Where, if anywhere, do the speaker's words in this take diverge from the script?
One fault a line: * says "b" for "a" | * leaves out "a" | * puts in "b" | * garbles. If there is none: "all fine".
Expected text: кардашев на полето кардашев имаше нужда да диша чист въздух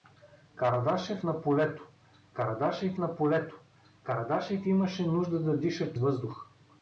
* puts in "на полето кардашев"
* leaves out "чист"